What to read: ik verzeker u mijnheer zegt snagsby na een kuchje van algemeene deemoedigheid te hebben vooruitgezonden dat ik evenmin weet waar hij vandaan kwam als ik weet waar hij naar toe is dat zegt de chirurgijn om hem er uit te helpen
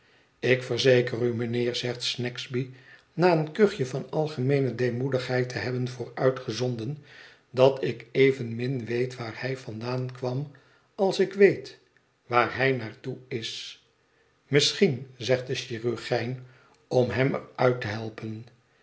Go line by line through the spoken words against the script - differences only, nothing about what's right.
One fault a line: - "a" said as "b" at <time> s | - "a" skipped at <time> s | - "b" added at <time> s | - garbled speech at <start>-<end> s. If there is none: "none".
- "dat" said as "misschien" at 14.5 s